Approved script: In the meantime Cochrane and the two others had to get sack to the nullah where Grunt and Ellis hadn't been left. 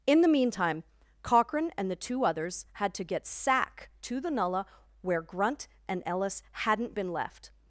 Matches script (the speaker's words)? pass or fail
pass